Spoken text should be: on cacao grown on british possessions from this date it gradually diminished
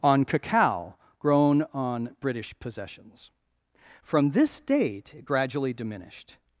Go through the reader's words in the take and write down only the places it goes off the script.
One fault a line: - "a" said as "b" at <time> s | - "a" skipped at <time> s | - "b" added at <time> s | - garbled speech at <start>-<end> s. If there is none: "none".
none